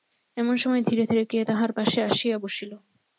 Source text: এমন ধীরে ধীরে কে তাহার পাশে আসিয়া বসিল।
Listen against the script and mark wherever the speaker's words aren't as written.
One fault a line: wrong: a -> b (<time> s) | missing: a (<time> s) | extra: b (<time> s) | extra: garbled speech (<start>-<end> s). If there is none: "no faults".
extra: সময় (0.6 s)